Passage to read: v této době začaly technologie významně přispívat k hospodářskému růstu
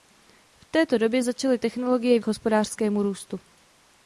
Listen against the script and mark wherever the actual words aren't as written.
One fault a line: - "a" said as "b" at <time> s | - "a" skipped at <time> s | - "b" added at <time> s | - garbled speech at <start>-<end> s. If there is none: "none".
- "významně přispívat" skipped at 2.2 s